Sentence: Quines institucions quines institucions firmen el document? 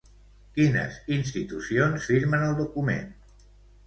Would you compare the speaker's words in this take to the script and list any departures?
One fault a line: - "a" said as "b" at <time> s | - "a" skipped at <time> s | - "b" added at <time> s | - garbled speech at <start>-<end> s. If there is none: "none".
- "quines institucions" skipped at 2.1 s